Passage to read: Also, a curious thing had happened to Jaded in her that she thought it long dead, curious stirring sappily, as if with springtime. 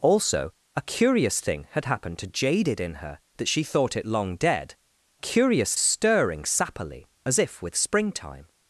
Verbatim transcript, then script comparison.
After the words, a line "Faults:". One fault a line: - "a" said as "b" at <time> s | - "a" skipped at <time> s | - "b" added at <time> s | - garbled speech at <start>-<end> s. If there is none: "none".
Also, a curious thing had happened to Jaded in her that she thought it long dead, curious stirring sappily, as if with springtime.
Faults:
none